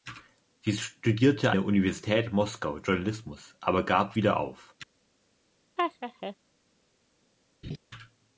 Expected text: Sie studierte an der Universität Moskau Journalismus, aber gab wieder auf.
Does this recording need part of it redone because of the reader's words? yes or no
yes